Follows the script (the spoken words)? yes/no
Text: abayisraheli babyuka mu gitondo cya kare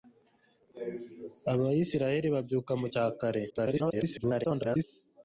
no